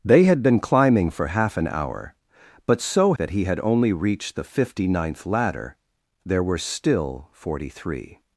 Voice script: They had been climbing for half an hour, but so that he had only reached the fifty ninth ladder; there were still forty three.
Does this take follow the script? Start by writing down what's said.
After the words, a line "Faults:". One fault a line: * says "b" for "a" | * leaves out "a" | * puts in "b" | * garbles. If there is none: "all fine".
They had been climbing for half an hour, but so that he had only reached the fifty ninth ladder; there were still forty three.
Faults:
all fine